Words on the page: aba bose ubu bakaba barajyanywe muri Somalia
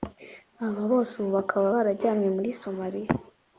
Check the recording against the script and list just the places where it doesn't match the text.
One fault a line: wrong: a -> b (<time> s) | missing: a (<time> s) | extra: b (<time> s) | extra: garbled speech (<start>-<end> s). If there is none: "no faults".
no faults